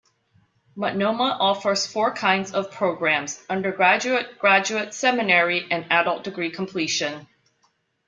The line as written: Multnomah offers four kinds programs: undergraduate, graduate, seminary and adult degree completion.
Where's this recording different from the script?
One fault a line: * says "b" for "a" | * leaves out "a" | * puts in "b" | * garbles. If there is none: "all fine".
* puts in "of"